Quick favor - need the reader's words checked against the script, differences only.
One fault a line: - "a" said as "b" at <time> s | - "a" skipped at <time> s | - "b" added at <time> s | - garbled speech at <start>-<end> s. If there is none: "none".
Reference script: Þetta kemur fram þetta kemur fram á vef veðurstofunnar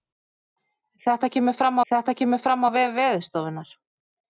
none